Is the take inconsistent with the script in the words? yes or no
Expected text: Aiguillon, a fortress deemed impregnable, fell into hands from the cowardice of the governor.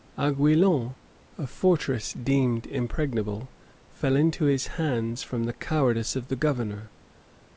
yes